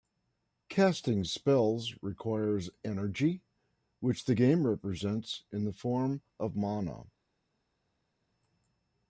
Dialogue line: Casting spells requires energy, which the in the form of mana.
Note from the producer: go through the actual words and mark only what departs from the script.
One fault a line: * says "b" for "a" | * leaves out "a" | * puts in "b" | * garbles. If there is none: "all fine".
* puts in "game represents"